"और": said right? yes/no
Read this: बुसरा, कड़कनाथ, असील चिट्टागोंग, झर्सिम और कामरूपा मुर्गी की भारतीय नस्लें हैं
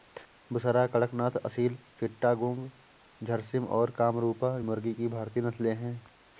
yes